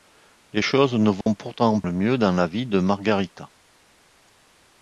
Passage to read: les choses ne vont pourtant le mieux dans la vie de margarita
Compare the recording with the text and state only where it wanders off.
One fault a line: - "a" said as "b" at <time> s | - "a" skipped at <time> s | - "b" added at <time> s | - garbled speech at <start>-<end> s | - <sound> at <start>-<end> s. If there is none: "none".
- dropout at 1.2-1.3 s